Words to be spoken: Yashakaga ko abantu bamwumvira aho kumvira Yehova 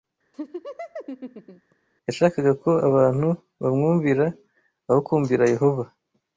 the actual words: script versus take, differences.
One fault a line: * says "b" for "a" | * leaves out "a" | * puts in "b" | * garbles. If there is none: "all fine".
all fine